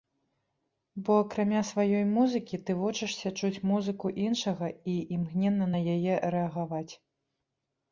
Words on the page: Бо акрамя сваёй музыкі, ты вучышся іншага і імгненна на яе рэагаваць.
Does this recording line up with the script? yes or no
no